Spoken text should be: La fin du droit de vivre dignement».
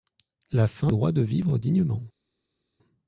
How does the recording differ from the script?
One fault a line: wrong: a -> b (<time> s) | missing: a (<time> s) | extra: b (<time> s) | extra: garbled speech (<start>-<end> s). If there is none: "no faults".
missing: du (0.9 s)